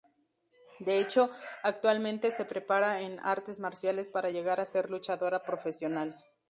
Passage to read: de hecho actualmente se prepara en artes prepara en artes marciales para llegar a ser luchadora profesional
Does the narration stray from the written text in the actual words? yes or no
yes